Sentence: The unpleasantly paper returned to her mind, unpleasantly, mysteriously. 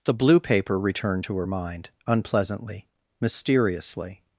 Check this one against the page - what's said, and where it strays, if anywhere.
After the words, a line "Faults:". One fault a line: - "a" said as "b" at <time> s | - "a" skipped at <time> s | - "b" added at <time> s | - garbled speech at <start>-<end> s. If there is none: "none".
The blue paper returned to her mind, unpleasantly, mysteriously.
Faults:
- "unpleasantly" said as "blue" at 0.1 s